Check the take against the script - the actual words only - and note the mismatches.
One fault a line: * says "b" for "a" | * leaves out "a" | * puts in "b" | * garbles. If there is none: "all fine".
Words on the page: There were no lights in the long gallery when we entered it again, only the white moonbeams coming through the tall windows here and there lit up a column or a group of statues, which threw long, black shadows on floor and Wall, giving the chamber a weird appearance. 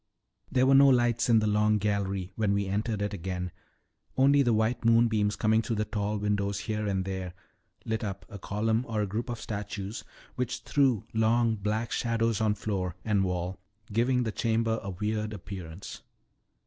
all fine